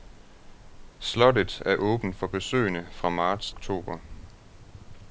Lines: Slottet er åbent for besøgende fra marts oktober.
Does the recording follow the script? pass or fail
pass